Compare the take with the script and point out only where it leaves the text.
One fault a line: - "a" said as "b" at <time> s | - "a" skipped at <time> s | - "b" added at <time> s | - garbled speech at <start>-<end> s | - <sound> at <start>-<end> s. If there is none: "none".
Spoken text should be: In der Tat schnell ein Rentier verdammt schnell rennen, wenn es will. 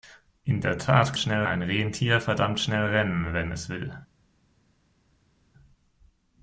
none